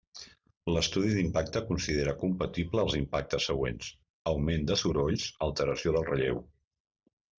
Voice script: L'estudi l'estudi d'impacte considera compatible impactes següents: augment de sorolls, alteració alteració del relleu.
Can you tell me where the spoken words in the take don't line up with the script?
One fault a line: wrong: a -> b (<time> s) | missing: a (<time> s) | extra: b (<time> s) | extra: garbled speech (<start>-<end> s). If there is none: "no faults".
missing: l'estudi (1.1 s)
extra: els (2.9 s)
missing: alteració (6.0 s)